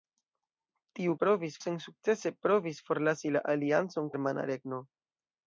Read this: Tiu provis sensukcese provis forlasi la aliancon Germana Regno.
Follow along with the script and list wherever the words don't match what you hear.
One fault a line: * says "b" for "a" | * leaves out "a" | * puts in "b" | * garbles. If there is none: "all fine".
all fine